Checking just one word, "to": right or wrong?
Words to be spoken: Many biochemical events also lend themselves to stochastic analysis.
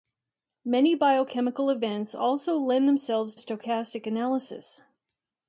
wrong